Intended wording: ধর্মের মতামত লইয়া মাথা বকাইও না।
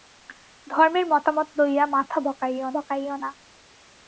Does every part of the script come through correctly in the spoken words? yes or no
no